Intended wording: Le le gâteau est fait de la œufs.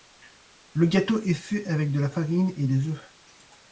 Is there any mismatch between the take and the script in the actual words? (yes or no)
yes